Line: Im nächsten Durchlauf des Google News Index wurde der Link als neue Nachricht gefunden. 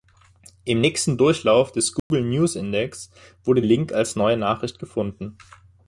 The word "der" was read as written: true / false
false